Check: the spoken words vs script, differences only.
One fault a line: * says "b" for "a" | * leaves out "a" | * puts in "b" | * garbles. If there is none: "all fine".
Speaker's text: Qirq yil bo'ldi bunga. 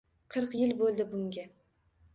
all fine